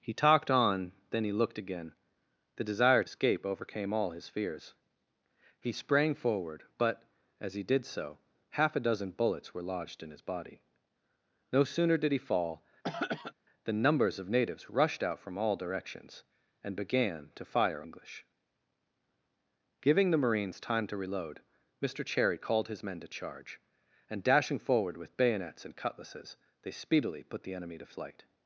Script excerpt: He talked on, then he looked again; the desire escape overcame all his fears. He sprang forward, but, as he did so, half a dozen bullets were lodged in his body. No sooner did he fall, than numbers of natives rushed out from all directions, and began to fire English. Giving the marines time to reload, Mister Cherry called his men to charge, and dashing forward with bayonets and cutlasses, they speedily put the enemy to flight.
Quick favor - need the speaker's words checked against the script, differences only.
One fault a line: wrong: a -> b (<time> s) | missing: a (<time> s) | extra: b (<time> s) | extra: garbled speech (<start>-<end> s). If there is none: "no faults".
no faults